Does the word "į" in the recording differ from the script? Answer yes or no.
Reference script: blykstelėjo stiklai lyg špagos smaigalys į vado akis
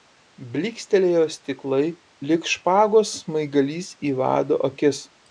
no